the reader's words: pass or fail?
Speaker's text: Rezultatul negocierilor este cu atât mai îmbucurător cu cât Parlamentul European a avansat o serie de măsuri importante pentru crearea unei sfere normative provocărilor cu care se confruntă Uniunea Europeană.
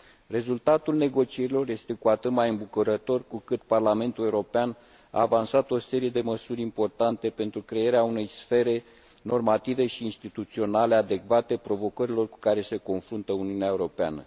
fail